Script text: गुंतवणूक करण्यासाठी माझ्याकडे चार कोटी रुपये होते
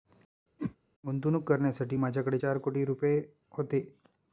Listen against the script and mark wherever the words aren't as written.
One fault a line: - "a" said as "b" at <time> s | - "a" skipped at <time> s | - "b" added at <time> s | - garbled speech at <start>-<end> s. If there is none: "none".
none